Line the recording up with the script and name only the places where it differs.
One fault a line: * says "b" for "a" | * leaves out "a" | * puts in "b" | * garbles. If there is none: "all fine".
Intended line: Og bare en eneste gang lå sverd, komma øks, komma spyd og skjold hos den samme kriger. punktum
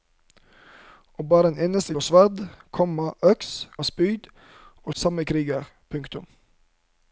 * leaves out "gang"
* leaves out "komma"
* leaves out "skjold hos den"